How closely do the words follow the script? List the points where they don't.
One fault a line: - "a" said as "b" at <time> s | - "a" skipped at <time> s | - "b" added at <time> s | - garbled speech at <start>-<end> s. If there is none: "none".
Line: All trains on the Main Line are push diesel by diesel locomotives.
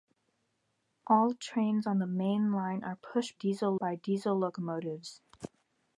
none